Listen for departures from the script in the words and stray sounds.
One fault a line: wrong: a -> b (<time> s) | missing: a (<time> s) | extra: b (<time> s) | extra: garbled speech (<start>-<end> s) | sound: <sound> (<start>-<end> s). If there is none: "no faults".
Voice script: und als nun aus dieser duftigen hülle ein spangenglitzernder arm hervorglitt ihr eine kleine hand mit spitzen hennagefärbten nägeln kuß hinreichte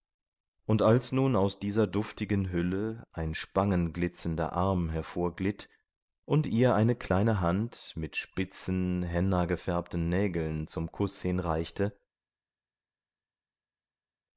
extra: und (6.2 s)
extra: zum (10.7 s)